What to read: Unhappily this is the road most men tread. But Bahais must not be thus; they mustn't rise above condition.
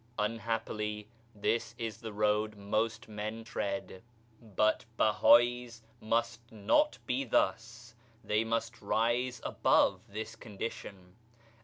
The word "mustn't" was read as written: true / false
false